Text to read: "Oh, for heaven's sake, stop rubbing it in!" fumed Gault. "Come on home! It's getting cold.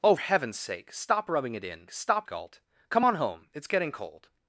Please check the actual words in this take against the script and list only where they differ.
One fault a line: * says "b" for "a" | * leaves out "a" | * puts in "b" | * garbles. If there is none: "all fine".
* leaves out "for"
* says "stop" for "fumed"